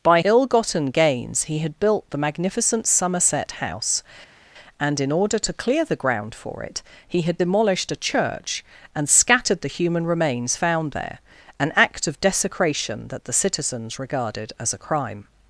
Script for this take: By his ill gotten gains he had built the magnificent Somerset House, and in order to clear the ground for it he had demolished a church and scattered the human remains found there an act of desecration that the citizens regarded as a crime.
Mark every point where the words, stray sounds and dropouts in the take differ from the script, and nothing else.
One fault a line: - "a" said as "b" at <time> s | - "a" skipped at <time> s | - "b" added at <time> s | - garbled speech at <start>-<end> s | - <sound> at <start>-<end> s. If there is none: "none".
- "his" skipped at 0.2 s